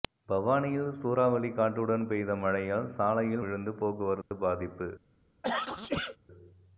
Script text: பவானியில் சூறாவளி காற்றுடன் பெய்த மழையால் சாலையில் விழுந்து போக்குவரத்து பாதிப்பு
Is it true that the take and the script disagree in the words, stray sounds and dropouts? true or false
true